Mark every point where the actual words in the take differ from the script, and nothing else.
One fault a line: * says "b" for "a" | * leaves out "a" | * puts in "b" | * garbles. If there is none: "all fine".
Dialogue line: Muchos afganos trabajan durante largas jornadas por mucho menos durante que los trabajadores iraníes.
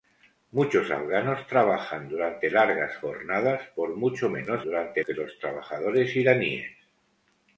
all fine